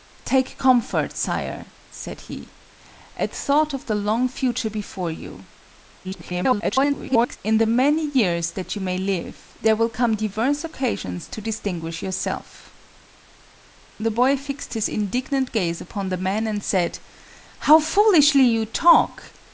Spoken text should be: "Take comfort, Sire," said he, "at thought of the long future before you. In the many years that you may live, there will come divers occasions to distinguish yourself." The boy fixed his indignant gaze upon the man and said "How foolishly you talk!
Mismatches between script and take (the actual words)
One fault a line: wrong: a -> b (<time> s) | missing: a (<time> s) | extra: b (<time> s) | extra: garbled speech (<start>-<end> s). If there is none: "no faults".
extra: garbled speech (6.0-7.4 s)